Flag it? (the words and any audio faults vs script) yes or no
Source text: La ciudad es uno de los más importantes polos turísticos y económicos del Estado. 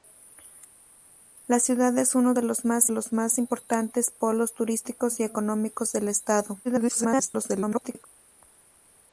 yes